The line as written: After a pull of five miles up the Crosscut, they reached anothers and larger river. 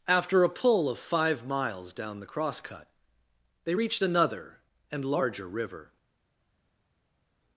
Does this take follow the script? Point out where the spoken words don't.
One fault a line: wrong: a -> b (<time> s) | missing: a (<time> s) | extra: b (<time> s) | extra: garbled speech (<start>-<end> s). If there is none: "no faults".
wrong: up -> down (1.9 s)
wrong: anothers -> another (4.0 s)